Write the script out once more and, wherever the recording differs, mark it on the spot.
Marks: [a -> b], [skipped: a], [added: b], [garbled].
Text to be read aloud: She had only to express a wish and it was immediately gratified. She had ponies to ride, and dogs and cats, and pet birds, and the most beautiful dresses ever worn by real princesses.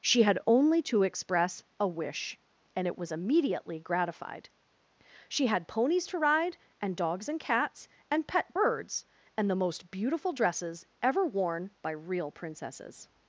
She had only to express a wish and it was immediately gratified. She had ponies to ride, and dogs and cats, and pet birds, and the most beautiful dresses ever worn by real princesses.